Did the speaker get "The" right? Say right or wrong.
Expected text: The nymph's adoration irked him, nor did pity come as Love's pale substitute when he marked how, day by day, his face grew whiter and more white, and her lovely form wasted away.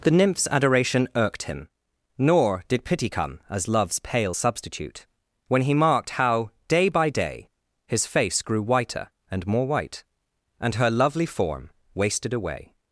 right